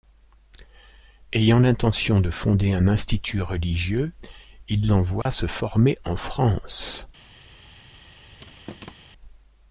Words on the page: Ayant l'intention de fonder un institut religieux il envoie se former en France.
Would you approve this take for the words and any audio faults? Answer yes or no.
no